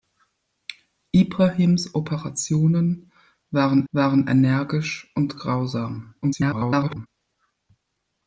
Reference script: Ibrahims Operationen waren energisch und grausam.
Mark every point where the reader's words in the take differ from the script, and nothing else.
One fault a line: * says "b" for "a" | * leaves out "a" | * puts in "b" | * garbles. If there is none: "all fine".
* puts in "waren"
* garbles